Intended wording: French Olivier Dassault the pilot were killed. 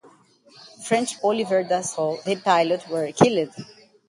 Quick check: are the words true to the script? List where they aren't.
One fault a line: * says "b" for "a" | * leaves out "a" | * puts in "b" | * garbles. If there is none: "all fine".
all fine